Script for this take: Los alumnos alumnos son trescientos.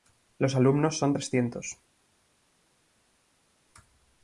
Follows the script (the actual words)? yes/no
no